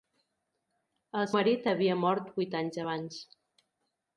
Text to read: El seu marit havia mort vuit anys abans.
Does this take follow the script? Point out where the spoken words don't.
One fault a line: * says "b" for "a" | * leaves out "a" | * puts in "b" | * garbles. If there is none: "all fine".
* leaves out "seu"